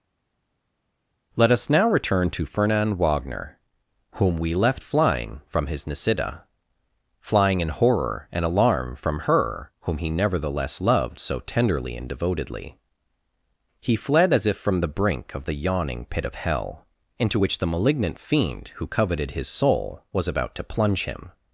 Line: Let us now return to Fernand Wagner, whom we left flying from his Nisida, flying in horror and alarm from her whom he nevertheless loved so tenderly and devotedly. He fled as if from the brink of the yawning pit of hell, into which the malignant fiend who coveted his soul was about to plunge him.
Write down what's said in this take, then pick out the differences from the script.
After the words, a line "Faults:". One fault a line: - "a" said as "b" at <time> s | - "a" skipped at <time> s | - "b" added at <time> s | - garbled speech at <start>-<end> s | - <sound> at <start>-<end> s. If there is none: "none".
Let us now return to Fernand Wagner, whom we left flying from his Nisida, flying in horror and alarm from her whom he nevertheless loved so tenderly and devotedly. He fled as if from the brink of the yawning pit of hell, into which the malignant fiend who coveted his soul was about to plunge him.
Faults:
none